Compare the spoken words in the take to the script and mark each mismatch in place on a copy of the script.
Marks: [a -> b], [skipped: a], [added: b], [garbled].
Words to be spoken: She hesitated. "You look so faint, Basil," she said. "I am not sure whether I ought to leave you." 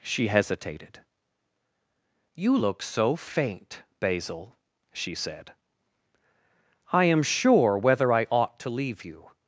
She hesitated. "You look so faint, Basil," she said. "I am [skipped: not] sure whether I ought to leave you."